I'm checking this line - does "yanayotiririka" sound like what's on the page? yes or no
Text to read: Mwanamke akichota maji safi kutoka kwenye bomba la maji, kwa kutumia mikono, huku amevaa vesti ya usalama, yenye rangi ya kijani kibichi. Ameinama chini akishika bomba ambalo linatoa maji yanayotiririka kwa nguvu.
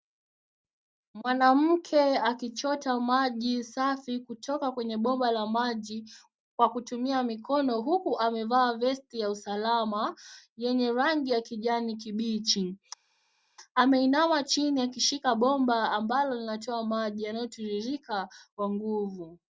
yes